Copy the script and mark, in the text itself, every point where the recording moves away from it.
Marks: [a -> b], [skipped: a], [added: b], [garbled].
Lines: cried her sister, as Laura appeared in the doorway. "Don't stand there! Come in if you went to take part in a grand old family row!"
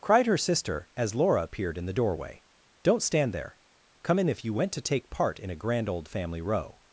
cried her sister, as Laura appeared in the doorway. "Don't stand there! Come in if you went to take part in a grand old family row!"